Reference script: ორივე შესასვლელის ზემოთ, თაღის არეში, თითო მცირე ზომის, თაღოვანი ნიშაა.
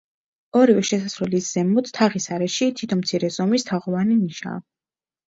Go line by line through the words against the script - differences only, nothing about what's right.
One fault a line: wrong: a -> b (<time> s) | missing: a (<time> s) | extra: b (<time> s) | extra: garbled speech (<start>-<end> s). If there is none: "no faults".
no faults